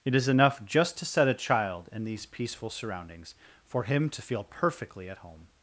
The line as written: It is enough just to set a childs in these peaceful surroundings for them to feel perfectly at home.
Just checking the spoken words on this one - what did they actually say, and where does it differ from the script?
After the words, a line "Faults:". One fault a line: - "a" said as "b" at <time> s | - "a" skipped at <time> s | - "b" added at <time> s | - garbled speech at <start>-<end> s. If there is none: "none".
It is enough just to set a child in these peaceful surroundings for him to feel perfectly at home.
Faults:
- "childs" said as "child" at 1.3 s
- "them" said as "him" at 3.8 s